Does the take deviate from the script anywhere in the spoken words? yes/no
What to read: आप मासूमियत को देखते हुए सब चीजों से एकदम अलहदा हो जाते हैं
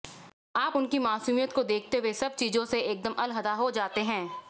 yes